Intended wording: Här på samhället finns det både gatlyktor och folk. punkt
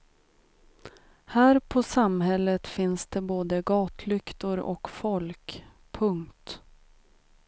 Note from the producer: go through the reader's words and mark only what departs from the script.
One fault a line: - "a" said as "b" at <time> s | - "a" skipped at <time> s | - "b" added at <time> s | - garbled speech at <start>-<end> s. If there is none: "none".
none